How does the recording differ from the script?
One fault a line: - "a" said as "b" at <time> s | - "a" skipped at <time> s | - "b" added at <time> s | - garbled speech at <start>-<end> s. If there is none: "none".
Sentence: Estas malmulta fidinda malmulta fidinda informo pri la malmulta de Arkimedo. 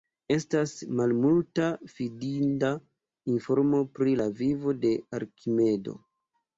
- "malmulta fidinda" skipped at 2.7 s
- "malmulta" said as "vivo" at 4.4 s